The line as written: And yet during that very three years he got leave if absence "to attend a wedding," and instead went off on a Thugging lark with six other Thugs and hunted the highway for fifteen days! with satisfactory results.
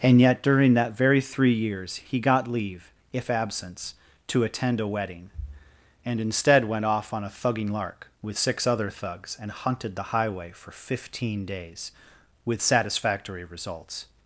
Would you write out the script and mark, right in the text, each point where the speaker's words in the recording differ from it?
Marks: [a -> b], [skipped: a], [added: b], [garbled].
And yet during that very three years he got leave if absence "to attend a wedding," and instead went off on a Thugging lark with six other Thugs and hunted the highway for fifteen days! with satisfactory results.